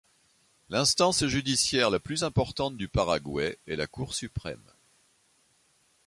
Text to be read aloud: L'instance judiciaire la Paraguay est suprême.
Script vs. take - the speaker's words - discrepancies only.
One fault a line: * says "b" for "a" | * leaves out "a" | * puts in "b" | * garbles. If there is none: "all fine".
* puts in "plus importante du"
* puts in "la Cour"